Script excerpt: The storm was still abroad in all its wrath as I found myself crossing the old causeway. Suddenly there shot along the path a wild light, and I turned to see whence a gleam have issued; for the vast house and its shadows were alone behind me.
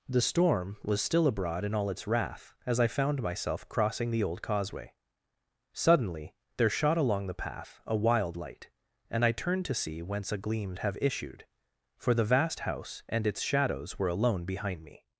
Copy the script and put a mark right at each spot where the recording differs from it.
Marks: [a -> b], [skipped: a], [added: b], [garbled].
The storm was still abroad in all its wrath as I found myself crossing the old causeway. Suddenly there shot along the path a wild light, and I turned to see whence a gleam have issued; for the vast house and its shadows were alone behind me.